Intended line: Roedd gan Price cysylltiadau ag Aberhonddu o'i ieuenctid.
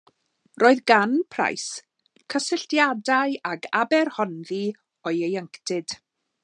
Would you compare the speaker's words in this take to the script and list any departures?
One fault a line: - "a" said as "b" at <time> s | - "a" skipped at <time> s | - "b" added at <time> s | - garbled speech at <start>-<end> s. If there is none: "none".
none